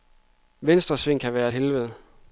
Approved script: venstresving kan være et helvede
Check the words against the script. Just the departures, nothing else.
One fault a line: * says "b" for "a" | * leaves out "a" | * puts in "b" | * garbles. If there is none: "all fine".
all fine